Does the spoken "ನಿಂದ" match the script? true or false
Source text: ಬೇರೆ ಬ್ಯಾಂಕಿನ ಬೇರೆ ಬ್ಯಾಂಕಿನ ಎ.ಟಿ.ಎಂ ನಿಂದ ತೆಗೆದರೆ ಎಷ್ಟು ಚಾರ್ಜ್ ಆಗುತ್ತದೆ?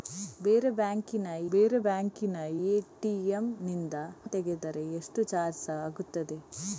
true